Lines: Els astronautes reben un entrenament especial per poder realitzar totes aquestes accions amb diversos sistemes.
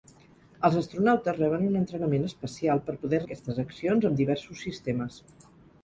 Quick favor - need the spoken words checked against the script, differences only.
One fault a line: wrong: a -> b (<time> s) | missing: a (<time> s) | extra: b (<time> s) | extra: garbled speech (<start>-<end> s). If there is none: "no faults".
missing: realitzar totes (3.2 s)